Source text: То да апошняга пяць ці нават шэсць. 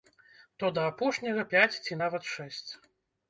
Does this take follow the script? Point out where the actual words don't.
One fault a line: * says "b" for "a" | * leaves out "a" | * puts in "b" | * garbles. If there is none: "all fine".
all fine